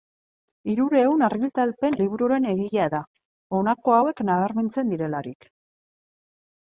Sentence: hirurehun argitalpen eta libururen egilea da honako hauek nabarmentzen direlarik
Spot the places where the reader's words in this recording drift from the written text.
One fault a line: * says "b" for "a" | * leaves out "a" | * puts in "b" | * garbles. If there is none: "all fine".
* leaves out "eta"